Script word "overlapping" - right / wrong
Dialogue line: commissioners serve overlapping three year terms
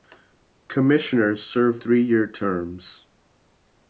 wrong